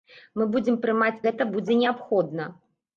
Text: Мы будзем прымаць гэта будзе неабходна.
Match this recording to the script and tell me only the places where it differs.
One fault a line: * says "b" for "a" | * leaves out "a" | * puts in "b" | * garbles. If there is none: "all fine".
all fine